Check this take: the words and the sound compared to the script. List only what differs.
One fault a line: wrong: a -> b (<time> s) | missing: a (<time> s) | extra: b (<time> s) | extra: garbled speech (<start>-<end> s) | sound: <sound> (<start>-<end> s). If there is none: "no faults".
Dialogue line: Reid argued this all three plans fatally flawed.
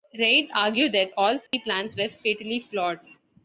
wrong: this -> that (0.9 s)
sound: dropout (1.5-1.5 s)
extra: were (1.9 s)